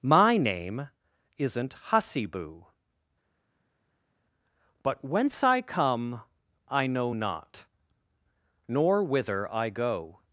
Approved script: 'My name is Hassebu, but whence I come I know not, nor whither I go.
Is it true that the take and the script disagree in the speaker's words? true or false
true